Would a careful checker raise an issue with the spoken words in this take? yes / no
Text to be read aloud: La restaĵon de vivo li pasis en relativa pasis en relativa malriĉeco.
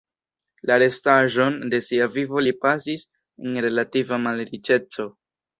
yes